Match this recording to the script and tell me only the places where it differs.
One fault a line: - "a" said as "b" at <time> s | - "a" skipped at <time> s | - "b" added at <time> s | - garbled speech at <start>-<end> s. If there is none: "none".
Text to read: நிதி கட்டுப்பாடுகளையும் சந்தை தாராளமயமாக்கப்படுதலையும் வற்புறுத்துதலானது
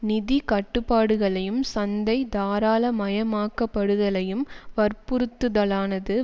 none